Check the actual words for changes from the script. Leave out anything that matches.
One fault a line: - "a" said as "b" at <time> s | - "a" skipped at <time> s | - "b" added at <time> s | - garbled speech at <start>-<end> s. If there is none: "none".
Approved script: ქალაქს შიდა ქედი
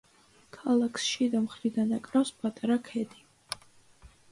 - "მხრიდან აკრავს პატარა" added at 1.4 s